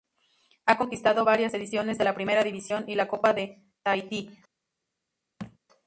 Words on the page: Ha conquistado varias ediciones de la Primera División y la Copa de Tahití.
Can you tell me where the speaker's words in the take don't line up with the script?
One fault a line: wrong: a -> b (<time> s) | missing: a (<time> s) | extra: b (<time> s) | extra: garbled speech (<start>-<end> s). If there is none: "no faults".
no faults